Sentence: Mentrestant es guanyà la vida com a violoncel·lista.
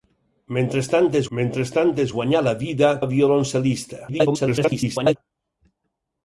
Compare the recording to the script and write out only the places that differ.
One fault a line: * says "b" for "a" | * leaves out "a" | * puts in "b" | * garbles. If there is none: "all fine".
* puts in "mentrestant es"
* leaves out "com"
* garbles